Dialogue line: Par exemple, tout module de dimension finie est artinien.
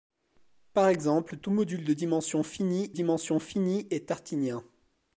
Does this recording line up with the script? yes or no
no